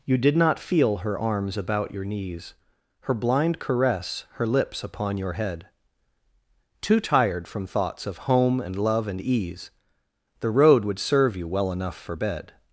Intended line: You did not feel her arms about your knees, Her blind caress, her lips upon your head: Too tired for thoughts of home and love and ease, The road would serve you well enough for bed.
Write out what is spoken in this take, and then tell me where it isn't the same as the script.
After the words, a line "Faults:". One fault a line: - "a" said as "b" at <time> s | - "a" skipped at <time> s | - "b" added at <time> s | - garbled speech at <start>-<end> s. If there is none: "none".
You did not feel her arms about your knees, Her blind caress, her lips upon your head: Too tired from thoughts of home and love and ease, The road would serve you well enough for bed.
Faults:
- "for" said as "from" at 7.5 s